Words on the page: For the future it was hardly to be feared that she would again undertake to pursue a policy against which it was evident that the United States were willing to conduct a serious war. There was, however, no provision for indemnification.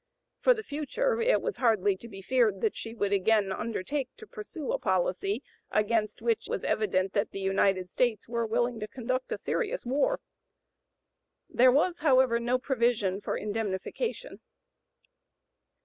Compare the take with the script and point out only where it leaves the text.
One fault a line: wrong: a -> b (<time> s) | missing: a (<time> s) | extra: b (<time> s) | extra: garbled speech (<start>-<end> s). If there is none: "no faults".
missing: it (6.5 s)